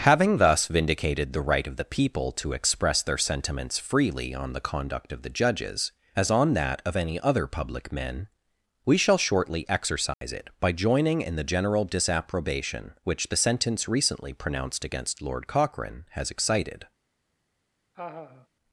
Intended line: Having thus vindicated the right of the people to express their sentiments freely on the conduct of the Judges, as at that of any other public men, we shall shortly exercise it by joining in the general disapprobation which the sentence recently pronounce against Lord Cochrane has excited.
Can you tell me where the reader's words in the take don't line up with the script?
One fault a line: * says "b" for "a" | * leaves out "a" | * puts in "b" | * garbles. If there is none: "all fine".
* says "on" for "at"
* says "pronounced" for "pronounce"